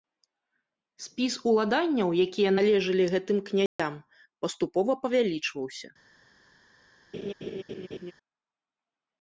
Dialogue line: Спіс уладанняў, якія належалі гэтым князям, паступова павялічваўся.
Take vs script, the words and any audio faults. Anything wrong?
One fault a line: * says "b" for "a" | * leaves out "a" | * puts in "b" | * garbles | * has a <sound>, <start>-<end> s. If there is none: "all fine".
* has a dropout, 3.7-3.8 s
* has a laugh, 7.1-8.1 s